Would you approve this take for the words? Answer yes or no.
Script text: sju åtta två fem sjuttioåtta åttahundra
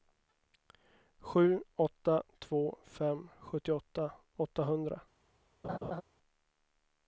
yes